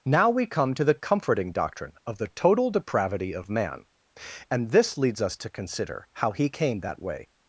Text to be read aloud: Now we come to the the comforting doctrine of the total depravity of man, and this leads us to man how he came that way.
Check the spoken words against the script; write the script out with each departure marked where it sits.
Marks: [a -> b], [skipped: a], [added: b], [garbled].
Now we come to the [skipped: the] comforting doctrine of the total depravity of man, and this leads us to [man -> consider] how he came that way.